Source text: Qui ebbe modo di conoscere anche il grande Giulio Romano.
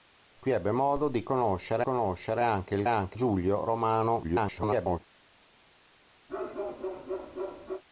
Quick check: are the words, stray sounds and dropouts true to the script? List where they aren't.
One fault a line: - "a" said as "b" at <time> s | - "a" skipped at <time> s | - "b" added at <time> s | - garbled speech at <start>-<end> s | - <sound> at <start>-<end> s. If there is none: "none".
- "conoscere" added at 1.8 s
- "grande" said as "anche" at 2.9 s
- garbled speech at 4.2-5.0 s
- bark at 6.3-7.8 s